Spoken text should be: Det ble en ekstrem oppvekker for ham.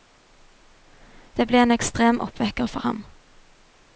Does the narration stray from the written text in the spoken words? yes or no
no